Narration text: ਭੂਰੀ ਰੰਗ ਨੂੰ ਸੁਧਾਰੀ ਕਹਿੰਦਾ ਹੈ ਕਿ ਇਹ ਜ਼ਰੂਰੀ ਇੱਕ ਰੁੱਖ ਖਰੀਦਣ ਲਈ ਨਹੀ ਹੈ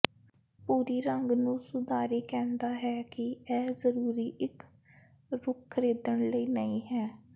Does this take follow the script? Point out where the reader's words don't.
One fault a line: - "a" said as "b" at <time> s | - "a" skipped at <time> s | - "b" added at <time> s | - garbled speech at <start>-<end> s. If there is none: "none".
none